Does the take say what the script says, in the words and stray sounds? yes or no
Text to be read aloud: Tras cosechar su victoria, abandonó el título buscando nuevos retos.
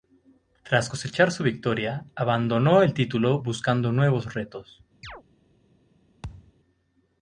no